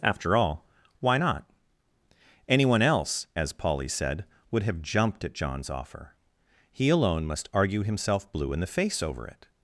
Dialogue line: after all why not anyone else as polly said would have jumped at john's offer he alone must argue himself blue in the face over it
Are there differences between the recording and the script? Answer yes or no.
no